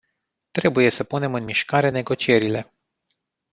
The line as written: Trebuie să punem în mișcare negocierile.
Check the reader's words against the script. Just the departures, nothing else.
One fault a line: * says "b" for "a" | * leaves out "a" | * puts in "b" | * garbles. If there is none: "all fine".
all fine